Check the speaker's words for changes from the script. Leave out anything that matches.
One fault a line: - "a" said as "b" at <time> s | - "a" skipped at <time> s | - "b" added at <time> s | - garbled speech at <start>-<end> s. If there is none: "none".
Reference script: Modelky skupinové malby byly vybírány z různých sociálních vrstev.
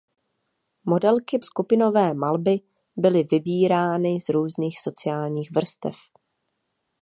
none